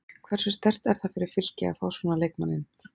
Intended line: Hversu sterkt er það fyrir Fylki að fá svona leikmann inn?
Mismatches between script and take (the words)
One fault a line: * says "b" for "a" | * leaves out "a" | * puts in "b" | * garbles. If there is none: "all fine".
all fine